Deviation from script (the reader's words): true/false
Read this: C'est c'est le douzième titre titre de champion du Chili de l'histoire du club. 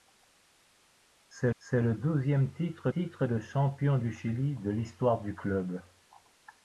false